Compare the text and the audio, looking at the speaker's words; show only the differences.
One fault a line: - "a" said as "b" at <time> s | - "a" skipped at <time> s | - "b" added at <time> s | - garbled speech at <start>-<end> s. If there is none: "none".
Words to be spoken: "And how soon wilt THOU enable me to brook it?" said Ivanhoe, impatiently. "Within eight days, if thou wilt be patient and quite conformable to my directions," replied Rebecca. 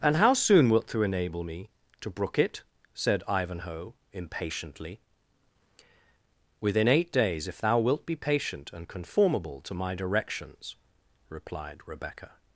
- "quite" skipped at 8.9 s